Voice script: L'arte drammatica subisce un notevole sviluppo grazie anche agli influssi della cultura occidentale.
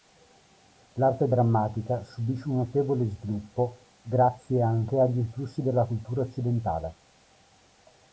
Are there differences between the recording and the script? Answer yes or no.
no